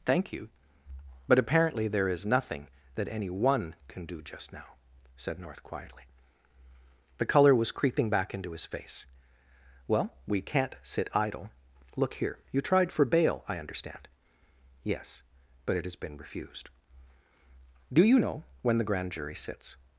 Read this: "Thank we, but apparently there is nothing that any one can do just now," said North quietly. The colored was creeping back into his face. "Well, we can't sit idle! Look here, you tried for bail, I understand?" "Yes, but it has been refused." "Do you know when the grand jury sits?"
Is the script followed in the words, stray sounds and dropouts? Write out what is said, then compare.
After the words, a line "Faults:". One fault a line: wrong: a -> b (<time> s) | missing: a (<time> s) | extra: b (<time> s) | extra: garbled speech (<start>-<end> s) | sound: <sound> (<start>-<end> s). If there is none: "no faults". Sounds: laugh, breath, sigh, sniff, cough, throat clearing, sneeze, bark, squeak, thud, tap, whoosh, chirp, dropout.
"Thank you, but apparently there is nothing that any one can do just now," said North quietly. The color was creeping back into his face. "Well, we can't sit idle! Look here, you tried for bail, I understand?" "Yes, but it has been refused." "Do you know when the grand jury sits?"
Faults:
wrong: we -> you (0.3 s)
wrong: colored -> color (7.3 s)